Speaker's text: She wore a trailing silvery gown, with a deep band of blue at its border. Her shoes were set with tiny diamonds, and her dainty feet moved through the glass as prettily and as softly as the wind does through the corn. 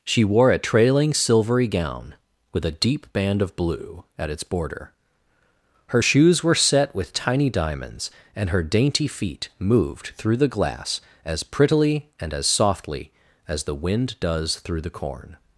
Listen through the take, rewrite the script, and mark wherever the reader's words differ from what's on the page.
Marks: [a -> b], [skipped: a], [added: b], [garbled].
She wore a trailing silvery gown, with a deep band of blue at its border. Her shoes were set with tiny diamonds, and her dainty feet moved through the glass as prettily and as softly as the wind does through the corn.